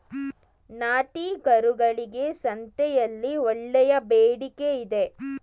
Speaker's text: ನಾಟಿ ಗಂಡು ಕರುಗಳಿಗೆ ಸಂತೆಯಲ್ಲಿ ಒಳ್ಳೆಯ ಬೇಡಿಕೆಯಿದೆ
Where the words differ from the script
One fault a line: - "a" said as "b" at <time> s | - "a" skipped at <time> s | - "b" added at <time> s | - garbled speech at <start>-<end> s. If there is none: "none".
- "ಗಂಡು" skipped at 1.2 s